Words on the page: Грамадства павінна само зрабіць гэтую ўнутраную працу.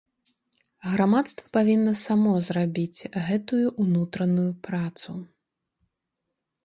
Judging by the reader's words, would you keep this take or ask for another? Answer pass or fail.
pass